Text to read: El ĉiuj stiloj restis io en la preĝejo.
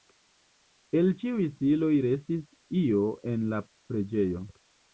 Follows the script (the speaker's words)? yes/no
yes